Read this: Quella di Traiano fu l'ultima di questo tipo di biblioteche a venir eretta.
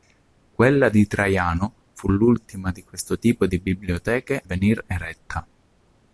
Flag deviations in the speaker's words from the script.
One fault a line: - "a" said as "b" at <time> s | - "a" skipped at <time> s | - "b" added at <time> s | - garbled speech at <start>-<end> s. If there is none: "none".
- "a" skipped at 4.4 s